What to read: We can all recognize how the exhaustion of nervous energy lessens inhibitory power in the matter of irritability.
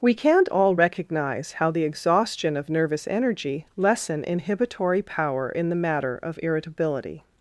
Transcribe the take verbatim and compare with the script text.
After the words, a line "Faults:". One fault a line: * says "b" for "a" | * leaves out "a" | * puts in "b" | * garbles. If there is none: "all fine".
We can't all recognize how the exhaustion of nervous energy lessen inhibitory power in the matter of irritability.
Faults:
* says "can't" for "can"
* says "lessen" for "lessens"